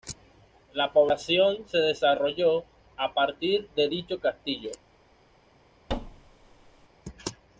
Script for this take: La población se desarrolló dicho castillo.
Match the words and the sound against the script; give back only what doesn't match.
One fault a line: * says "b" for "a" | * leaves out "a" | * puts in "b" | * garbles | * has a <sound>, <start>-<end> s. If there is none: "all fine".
* puts in "a partir de"
* has a thud, 5.9-6.9 s